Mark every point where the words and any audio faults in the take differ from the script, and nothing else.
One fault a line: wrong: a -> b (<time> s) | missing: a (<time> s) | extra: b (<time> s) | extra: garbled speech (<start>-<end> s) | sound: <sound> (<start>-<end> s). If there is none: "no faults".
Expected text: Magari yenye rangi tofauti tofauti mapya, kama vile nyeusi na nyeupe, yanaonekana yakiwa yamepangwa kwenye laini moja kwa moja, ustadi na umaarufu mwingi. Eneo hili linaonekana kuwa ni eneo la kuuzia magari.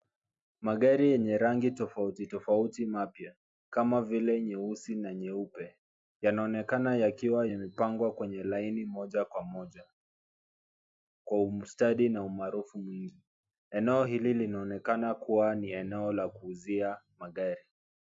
extra: kwa (11.2 s)